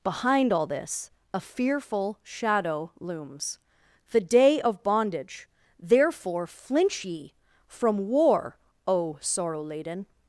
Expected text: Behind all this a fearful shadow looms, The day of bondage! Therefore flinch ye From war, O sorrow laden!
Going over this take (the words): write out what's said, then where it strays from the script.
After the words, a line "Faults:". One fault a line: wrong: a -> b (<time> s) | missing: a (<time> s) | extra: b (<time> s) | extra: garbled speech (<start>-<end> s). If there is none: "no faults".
Behind all this a fearful shadow looms, The day of bondage! Therefore flinch ye From war, O sorrow laden!
Faults:
no faults